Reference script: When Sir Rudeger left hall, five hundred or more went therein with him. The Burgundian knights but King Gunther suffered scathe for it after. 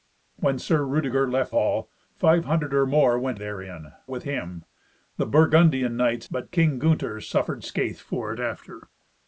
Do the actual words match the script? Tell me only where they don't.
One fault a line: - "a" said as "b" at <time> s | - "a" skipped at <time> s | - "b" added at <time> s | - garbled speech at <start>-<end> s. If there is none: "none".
none